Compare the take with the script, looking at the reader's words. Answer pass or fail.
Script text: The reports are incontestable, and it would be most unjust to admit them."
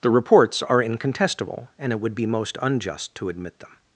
pass